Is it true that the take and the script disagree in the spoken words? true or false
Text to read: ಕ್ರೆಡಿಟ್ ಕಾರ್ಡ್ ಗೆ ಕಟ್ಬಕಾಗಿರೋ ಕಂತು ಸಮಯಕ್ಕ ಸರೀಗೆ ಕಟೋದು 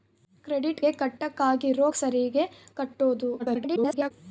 true